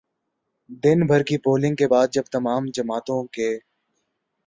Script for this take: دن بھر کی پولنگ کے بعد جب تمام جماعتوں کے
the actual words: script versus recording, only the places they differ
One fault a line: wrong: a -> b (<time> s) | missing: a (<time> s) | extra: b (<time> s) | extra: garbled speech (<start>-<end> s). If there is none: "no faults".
no faults